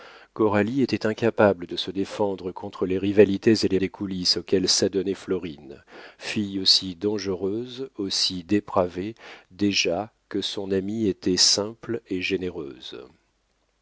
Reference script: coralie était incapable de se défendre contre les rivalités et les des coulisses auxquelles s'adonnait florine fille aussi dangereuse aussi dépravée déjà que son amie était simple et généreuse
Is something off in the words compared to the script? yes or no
no